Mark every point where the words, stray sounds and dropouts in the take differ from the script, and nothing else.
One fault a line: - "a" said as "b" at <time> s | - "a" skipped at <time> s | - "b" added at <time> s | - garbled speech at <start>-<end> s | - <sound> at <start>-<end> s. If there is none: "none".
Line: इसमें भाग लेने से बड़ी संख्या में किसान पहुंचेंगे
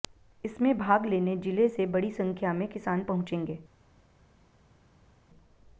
- "जिले" added at 1.4 s